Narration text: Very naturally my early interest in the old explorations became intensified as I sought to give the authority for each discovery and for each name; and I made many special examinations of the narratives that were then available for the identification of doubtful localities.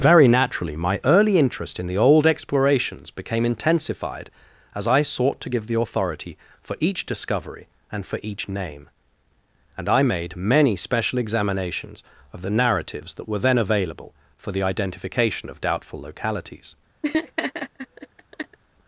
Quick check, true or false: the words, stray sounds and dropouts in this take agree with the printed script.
false